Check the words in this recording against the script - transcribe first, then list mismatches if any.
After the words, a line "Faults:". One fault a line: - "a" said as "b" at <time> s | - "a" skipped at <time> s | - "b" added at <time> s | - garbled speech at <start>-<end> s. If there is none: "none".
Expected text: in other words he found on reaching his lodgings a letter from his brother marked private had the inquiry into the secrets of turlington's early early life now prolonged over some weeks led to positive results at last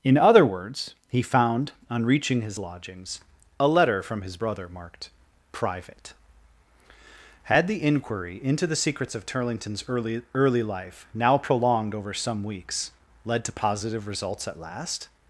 in other words he found on reaching his lodgings a letter from his brother marked private had the inquiry into the secrets of turlington's early early life now prolonged over some weeks led to positive results at last
Faults:
none